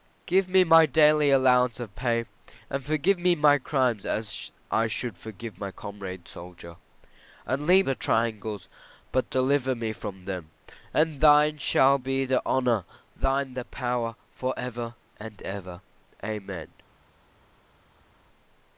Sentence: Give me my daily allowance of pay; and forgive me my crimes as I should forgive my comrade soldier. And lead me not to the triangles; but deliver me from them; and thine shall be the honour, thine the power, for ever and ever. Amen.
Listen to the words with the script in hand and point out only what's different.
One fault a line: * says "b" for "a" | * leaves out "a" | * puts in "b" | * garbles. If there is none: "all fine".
* leaves out "me not to"